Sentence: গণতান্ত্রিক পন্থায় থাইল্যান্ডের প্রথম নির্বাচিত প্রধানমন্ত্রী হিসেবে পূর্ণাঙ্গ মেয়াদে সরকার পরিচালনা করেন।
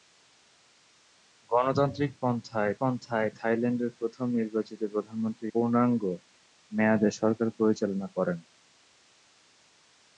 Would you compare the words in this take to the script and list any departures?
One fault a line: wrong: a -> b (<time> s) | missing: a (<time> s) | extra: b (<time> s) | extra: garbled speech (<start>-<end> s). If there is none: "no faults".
extra: পন্থায় (2.8 s)
missing: হিসেবে (5.5 s)